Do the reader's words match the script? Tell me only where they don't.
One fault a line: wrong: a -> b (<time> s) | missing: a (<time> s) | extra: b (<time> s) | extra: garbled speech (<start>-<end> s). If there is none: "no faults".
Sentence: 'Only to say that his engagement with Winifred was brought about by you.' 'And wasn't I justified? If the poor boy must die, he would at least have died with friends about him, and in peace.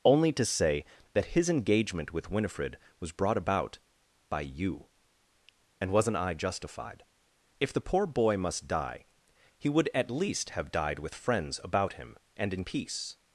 no faults